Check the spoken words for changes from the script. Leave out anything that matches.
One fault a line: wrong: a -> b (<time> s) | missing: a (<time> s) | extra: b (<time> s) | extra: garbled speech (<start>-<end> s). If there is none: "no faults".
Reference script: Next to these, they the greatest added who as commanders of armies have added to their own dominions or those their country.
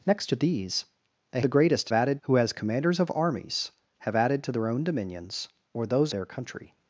no faults